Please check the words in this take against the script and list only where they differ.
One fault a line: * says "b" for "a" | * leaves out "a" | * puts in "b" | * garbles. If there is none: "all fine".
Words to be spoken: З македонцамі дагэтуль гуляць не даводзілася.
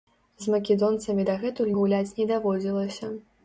all fine